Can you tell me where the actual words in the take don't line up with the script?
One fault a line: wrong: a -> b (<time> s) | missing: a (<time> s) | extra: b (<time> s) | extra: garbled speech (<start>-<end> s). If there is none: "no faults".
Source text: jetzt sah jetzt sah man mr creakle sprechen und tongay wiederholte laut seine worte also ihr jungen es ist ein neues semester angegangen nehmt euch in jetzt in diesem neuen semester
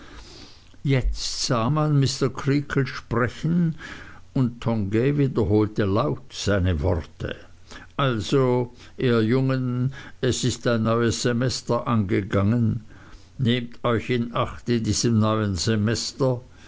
missing: jetzt sah (1.7 s)
wrong: jetzt -> acht (14.4 s)